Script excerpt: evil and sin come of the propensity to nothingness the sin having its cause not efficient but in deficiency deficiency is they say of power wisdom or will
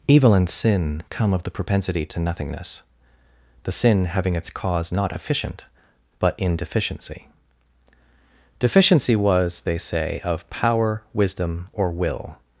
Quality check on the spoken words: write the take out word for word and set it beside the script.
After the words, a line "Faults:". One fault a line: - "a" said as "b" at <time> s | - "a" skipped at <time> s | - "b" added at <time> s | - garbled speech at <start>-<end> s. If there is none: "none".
evil and sin come of the propensity to nothingness the sin having its cause not efficient but in deficiency deficiency was they say of power wisdom or will
Faults:
- "is" said as "was" at 9.2 s